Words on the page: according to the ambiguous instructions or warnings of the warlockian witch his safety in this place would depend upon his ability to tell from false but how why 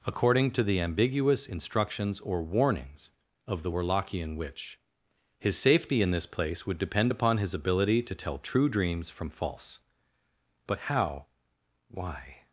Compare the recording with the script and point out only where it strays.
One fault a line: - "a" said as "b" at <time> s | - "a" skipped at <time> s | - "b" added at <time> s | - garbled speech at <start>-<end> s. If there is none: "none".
- "true dreams" added at 8.4 s